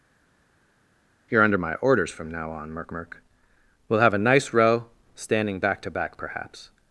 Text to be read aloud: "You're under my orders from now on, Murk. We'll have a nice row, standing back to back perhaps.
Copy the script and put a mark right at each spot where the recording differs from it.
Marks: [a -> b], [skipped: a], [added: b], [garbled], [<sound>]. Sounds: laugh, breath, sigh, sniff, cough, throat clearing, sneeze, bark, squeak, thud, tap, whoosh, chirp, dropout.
"You're under my orders from now on, Murk. [added: Murk] We'll have a nice row, standing back to back perhaps.